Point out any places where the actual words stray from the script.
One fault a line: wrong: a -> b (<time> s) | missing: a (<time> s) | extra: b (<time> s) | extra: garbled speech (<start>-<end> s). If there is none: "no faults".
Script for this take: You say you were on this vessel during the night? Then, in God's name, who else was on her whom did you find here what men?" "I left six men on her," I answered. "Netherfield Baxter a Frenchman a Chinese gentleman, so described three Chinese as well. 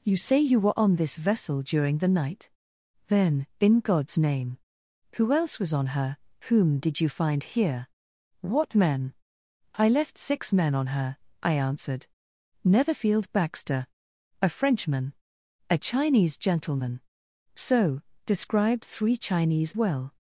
missing: as (19.7 s)